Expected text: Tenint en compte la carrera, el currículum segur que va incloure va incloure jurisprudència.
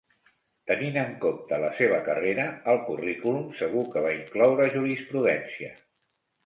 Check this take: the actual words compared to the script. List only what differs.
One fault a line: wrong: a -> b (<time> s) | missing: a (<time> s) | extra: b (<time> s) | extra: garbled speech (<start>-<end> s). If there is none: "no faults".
extra: seva (1.8 s)
missing: va incloure (4.7 s)